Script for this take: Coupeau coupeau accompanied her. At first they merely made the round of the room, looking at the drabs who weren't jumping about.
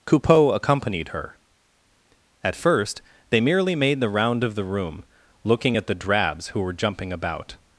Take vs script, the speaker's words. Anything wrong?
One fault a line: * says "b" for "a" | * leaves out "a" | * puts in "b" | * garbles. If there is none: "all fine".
* leaves out "coupeau"
* says "were" for "weren't"